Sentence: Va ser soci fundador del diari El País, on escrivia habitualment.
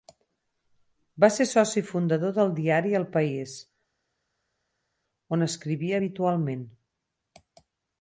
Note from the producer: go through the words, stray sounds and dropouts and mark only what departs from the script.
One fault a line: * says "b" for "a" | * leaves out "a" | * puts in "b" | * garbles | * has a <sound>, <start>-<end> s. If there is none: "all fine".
all fine